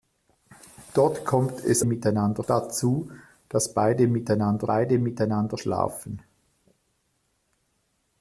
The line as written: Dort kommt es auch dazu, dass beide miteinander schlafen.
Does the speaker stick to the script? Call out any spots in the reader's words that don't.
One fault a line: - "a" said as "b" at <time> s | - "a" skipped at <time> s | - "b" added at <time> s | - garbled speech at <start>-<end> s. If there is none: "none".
- "auch" said as "miteinander" at 1.8 s
- "beide miteinander" added at 4.6 s